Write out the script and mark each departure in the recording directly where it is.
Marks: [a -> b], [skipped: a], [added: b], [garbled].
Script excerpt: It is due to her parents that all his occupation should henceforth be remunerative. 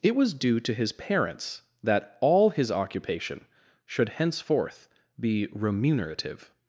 It [is -> was] due to [her -> his] parents that all his occupation should henceforth be remunerative.